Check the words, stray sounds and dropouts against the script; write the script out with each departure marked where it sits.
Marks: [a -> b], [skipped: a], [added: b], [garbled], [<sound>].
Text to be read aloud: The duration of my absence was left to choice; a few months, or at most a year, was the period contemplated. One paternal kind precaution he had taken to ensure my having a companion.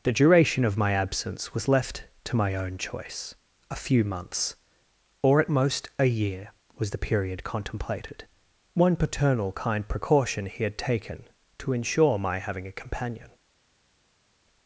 The duration of my absence was left to [added: my own] choice; a few months, or at most a year, was the period contemplated. One paternal kind precaution he had taken to ensure my having a companion.